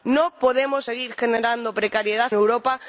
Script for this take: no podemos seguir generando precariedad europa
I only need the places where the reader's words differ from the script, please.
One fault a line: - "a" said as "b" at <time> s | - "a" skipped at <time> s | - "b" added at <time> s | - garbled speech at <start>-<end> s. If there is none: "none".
none